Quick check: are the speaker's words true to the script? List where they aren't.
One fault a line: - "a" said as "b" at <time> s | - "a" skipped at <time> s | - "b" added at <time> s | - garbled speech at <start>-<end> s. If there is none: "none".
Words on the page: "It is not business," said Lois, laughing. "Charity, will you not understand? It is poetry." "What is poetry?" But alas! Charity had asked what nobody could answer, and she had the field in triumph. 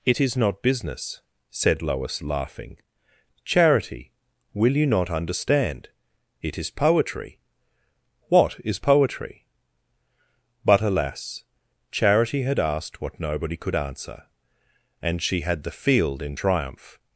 none